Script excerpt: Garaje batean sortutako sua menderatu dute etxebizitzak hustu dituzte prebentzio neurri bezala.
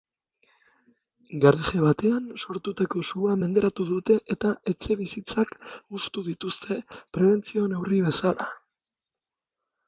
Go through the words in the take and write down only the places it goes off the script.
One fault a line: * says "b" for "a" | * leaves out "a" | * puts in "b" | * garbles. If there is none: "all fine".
* puts in "eta"